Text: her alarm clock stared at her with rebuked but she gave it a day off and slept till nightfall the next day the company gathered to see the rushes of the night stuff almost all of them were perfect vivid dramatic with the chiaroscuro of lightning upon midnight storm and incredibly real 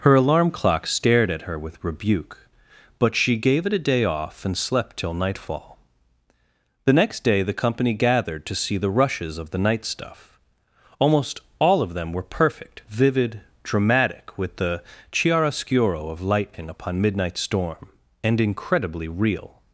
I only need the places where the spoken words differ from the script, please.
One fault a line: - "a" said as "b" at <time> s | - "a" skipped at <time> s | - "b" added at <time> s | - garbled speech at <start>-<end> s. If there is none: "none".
- "rebuked" said as "rebuke" at 1.8 s